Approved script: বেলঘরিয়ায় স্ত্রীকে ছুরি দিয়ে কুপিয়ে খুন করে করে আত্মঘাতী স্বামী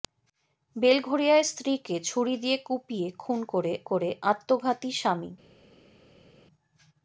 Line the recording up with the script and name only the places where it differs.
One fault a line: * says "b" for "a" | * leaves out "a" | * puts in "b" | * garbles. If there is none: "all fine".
all fine